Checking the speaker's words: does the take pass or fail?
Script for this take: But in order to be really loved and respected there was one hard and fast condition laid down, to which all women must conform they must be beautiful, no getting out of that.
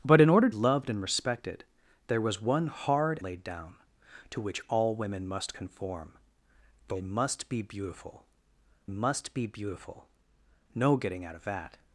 fail